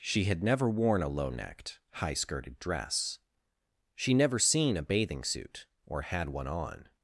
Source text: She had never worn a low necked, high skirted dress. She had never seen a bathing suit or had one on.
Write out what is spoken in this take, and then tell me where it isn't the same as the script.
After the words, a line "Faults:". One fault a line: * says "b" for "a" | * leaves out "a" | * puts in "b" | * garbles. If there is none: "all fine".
She had never worn a low necked, high skirted dress. She never seen a bathing suit or had one on.
Faults:
* leaves out "had"